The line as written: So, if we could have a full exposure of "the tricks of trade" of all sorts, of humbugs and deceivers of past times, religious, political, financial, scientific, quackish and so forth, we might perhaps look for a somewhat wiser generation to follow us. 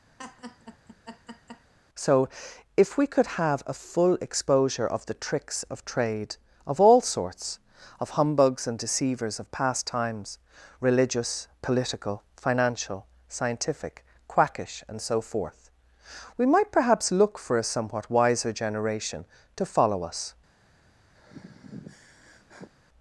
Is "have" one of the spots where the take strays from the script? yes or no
no